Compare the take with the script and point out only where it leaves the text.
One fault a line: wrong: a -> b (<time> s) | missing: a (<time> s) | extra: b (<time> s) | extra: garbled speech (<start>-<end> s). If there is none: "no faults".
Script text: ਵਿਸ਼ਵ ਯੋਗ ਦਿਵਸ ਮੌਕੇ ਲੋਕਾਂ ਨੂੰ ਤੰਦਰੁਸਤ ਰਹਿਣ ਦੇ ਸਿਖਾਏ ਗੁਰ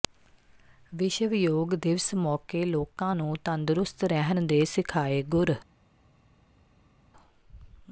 no faults